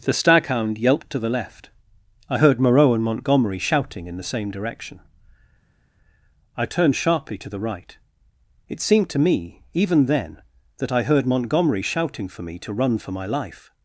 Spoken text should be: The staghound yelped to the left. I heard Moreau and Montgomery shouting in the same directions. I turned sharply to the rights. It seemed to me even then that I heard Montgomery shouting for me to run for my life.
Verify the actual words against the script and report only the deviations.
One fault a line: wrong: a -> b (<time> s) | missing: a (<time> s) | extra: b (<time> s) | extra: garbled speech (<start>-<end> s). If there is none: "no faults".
wrong: directions -> direction (4.5 s)
wrong: rights -> right (7.6 s)